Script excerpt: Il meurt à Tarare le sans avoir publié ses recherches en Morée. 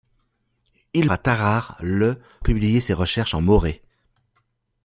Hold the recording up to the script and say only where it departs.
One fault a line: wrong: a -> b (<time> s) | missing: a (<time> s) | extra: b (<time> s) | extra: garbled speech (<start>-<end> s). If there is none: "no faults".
missing: meurt (1.1 s)
missing: sans avoir (2.2 s)